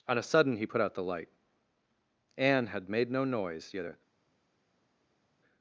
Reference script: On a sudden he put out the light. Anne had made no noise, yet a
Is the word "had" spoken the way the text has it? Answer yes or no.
yes